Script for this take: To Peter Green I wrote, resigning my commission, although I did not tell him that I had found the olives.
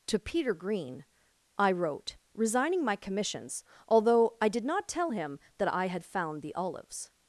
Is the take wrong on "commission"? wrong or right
wrong